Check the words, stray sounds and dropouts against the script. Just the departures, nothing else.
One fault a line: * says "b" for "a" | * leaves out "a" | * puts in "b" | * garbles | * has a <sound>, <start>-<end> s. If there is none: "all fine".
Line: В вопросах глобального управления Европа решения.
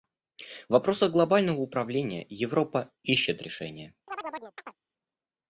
* puts in "ищет"
* has a chirp, 4.1-4.8 s